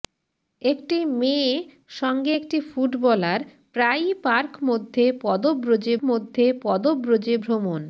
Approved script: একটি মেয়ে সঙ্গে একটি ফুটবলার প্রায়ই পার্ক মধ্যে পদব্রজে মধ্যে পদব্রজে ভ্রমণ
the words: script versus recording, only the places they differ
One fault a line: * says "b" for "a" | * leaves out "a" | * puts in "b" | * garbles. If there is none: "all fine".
all fine